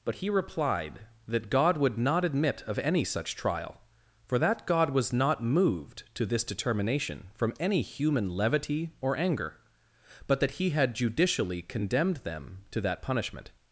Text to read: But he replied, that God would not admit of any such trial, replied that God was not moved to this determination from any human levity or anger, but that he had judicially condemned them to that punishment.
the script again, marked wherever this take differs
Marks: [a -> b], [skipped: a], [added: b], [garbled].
But he replied, that God would not admit of any such trial, [replied -> for] that God was not moved to this determination from any human levity or anger, but that he had judicially condemned them to that punishment.